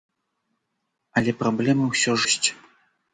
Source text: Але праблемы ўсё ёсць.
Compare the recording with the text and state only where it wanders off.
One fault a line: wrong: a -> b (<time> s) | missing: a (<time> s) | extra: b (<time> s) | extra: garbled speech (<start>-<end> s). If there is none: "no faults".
no faults